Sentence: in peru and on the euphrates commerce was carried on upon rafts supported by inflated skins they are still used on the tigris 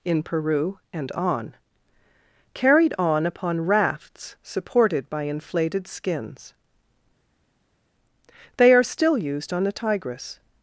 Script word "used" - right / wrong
right